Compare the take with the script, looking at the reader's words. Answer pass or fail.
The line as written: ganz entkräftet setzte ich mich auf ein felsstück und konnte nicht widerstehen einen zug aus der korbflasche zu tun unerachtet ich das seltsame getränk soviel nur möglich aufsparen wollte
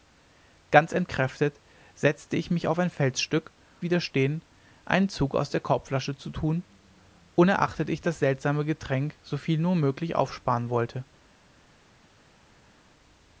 fail